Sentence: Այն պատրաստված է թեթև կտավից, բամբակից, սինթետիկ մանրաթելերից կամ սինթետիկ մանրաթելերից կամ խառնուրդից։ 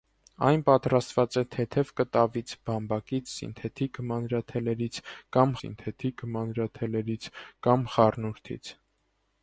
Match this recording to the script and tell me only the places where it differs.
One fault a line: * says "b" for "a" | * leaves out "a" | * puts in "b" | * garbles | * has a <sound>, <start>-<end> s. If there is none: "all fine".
all fine